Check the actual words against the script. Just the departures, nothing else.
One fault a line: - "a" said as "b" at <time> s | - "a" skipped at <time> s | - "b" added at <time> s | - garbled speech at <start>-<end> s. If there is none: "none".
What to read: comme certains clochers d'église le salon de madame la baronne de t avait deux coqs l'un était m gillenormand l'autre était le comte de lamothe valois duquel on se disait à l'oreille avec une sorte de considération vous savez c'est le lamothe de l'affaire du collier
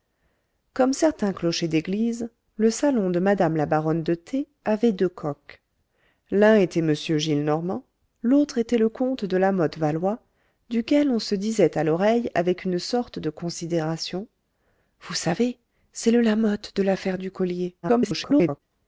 - garbled speech at 17.8-18.6 s